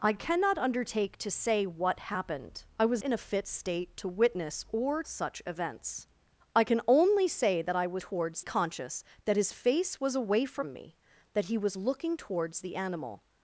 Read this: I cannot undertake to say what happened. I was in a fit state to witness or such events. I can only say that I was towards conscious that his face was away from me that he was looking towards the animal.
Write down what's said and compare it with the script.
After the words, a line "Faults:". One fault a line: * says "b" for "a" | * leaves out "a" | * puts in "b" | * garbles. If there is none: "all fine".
I cannot undertake to say what happened. I was in a fit state to witness or such events. I can only say that I was towards conscious that his face was away from me that he was looking towards the animal.
Faults:
all fine